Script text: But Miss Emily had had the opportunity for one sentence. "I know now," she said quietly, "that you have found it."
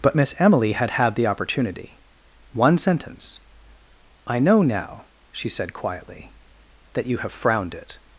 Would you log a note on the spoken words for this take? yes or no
yes